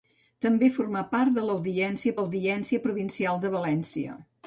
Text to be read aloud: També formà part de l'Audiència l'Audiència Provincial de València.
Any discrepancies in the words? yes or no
no